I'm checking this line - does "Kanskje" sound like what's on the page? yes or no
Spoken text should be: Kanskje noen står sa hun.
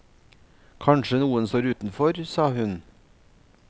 yes